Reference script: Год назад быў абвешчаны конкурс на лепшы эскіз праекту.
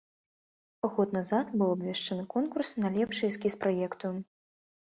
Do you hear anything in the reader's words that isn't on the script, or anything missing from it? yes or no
no